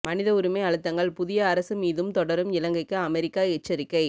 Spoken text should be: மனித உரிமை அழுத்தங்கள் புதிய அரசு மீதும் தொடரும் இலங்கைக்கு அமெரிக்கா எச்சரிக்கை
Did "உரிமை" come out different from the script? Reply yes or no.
no